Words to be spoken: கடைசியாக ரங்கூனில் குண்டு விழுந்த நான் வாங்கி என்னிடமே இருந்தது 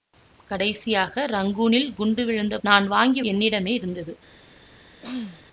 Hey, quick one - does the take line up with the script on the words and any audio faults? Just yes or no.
no